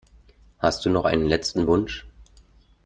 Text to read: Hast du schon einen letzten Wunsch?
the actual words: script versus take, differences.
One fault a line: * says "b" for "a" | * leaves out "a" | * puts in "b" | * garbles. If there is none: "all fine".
* says "noch" for "schon"